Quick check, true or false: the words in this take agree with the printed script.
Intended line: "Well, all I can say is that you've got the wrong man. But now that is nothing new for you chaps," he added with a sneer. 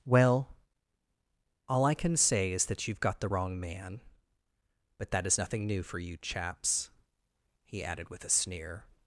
false